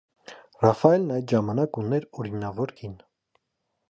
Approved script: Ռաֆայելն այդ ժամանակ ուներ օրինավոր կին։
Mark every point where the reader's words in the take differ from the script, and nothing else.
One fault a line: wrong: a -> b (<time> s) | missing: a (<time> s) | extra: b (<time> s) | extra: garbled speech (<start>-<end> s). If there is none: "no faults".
no faults